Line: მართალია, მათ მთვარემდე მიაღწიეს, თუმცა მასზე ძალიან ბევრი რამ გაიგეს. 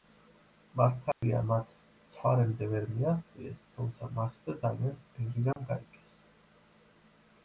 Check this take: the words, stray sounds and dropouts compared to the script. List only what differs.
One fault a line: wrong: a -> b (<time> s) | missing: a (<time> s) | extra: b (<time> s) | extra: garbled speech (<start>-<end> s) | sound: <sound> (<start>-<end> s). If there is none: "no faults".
sound: dropout (1.1-1.2 s)
extra: ვერ (2.7 s)
sound: dropout (5.5-5.6 s)